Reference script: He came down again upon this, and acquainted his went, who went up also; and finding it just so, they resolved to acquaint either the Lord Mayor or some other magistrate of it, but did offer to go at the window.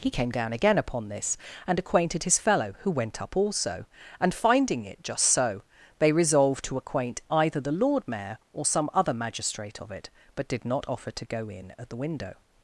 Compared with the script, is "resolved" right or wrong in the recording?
right